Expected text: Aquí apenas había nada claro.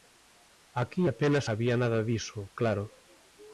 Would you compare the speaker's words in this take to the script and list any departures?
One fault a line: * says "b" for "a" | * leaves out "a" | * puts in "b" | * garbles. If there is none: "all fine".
* puts in "diso"